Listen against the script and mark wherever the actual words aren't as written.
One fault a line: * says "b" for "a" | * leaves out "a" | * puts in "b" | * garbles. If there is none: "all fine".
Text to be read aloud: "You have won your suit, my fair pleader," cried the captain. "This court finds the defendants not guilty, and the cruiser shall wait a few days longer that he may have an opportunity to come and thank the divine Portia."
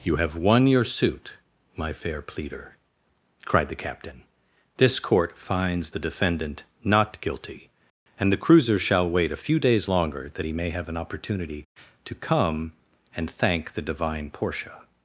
* says "defendant" for "defendants"